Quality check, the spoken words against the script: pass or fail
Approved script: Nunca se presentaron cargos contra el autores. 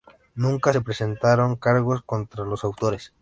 fail